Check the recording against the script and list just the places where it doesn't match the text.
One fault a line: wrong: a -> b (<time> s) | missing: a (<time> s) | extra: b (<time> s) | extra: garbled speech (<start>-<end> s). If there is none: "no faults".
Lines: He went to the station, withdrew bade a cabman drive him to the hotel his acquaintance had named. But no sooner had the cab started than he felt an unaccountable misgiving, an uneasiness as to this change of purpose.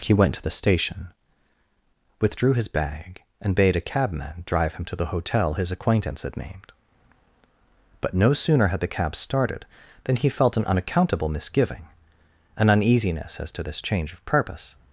extra: his bag and (2.5 s)